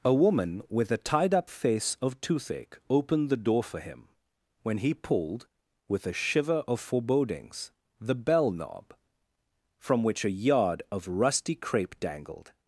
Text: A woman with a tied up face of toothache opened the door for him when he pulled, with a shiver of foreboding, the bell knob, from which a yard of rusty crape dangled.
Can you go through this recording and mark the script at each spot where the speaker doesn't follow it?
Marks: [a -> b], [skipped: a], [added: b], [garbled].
A woman with a tied up face of toothache opened the door for him when he pulled, with a shiver of [foreboding, -> forebodings] the bell knob, from which a yard of rusty crape dangled.